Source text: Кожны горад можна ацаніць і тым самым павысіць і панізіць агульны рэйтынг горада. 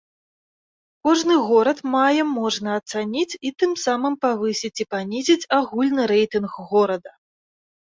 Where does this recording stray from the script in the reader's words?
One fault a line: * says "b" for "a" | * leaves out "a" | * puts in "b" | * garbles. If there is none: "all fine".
* puts in "мае"